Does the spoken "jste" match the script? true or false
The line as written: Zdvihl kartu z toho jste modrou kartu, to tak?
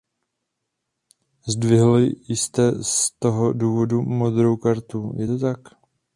false